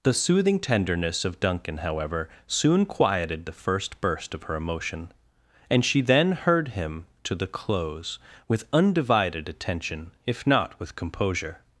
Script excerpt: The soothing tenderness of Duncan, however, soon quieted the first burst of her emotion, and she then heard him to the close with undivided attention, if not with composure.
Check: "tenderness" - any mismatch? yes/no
no